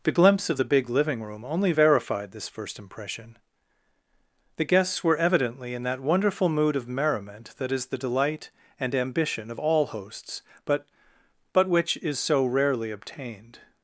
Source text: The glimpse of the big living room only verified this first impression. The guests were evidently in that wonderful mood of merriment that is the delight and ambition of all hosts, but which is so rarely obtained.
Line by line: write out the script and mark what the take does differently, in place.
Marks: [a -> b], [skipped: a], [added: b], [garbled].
The glimpse of the big living room only verified this first impression. The guests were evidently in that wonderful mood of merriment that is the delight and ambition of all hosts, but [added: but] which is so rarely obtained.